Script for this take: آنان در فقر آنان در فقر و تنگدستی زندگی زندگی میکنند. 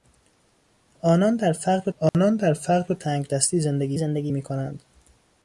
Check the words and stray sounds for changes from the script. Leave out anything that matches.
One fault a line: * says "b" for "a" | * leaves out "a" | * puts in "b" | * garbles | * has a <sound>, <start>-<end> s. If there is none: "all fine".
* has a dropout, 2.1-2.1 s